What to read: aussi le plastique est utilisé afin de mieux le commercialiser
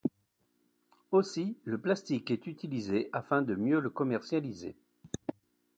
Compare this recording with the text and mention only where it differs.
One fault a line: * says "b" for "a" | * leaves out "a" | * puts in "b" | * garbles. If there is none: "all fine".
all fine